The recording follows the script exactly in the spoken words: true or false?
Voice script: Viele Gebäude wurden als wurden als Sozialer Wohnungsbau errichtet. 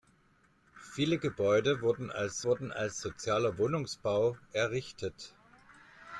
true